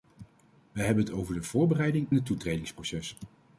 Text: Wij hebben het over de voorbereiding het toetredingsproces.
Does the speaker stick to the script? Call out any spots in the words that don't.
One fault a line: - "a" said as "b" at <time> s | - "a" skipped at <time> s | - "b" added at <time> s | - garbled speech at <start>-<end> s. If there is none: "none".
none